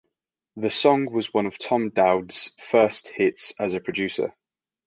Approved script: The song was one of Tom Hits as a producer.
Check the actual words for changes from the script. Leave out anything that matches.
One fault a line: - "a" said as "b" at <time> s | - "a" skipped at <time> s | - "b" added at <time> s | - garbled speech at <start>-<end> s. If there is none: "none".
- "Dowd's first" added at 1.9 s